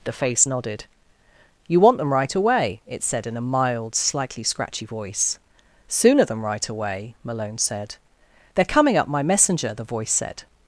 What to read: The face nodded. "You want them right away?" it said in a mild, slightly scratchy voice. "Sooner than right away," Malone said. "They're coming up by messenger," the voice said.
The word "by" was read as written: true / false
false